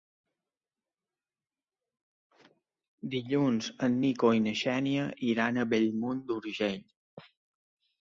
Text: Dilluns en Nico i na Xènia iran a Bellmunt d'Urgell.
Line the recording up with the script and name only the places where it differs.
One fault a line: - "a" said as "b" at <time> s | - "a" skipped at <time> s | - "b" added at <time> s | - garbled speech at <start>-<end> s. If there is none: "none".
none